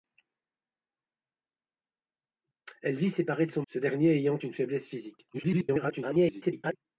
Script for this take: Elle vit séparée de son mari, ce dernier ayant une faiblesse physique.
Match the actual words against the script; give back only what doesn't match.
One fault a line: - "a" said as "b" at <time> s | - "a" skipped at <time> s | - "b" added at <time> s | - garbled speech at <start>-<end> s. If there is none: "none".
- "mari" skipped at 3.6 s
- garbled speech at 5.3-6.8 s